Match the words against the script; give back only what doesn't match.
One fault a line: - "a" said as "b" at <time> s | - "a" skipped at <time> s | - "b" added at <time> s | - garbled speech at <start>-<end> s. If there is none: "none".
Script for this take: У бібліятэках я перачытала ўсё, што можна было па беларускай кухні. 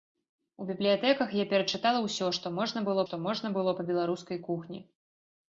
- "што можна было" added at 3.1 s